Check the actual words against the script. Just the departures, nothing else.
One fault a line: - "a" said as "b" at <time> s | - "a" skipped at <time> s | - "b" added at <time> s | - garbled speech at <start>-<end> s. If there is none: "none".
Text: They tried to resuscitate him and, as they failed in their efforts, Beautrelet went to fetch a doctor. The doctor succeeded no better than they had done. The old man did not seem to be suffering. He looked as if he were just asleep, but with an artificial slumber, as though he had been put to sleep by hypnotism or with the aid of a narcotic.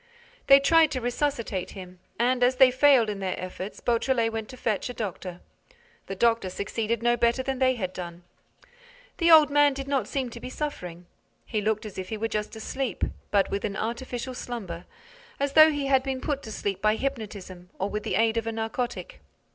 none